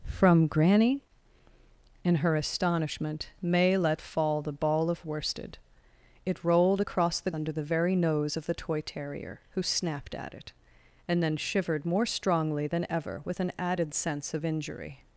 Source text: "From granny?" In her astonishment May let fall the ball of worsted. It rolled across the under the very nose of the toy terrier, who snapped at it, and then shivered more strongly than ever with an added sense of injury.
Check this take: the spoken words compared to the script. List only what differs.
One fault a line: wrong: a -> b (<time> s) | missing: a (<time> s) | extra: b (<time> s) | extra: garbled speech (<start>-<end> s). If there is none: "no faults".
no faults